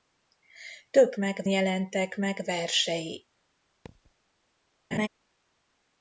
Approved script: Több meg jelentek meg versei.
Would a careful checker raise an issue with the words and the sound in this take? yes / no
yes